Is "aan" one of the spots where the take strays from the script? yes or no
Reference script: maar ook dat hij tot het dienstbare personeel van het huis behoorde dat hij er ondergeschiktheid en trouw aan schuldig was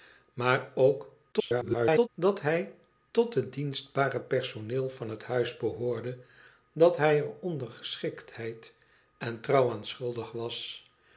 no